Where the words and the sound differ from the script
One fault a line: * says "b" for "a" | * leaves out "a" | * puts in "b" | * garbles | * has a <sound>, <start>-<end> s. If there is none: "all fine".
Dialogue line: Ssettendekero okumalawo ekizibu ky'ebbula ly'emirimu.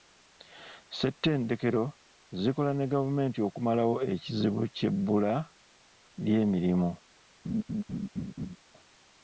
* puts in "zikola ne gavumenti"
* has a laugh, 7.4-8.6 s